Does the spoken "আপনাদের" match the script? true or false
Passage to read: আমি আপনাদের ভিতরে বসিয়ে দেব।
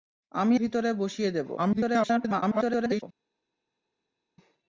false